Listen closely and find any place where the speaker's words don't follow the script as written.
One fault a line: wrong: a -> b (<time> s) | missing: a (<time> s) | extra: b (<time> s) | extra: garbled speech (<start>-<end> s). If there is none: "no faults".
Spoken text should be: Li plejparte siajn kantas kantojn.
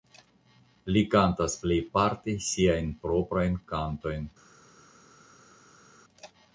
extra: kantas (1.1 s)
wrong: kantas -> proprajn (3.1 s)